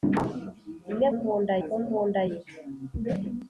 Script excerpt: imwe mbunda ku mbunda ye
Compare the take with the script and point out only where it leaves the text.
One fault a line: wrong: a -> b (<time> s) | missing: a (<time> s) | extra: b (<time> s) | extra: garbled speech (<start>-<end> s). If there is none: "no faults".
no faults